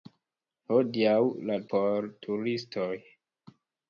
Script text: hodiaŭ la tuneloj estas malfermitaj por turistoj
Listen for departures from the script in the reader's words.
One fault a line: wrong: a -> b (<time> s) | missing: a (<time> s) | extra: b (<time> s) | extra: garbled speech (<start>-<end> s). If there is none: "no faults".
missing: tuneloj estas malfermitaj (1.6 s)